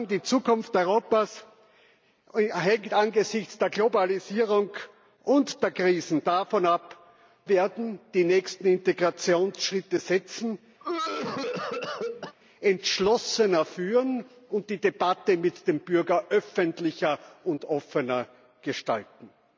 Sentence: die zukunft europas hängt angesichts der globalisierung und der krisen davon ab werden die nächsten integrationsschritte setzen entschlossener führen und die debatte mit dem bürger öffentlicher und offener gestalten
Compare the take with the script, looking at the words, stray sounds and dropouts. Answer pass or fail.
fail